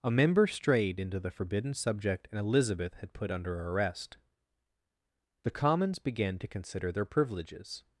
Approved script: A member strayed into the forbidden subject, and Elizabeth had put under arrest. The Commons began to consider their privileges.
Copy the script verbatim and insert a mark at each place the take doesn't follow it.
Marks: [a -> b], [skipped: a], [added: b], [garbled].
A member strayed into the forbidden subject, and Elizabeth had put under arrest. The Commons began to consider their privileges.